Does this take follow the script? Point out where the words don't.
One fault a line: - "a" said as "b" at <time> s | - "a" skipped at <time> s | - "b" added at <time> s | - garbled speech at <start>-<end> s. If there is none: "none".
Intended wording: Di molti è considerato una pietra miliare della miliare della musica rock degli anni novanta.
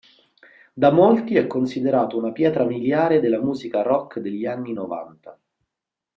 - "Di" said as "Da" at 0.7 s
- "miliare della" skipped at 3.4 s